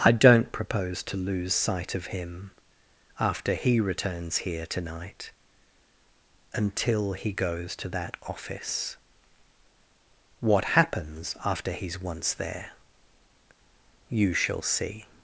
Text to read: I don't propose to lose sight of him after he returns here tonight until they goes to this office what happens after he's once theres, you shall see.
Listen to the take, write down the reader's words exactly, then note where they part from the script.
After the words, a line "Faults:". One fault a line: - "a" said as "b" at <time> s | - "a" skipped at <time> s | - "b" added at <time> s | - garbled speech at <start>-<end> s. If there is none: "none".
I don't propose to lose sight of him after he returns here tonight until he goes to that office what happens after he's once there, you shall see.
Faults:
- "they" said as "he" at 7.1 s
- "this" said as "that" at 7.9 s
- "theres" said as "there" at 12.3 s